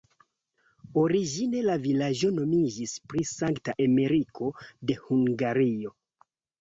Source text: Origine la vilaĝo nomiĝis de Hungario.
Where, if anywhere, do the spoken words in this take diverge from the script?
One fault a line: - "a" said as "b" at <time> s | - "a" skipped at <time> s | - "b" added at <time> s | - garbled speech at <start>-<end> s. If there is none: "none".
- "pri Sankta Emeriko" added at 3.1 s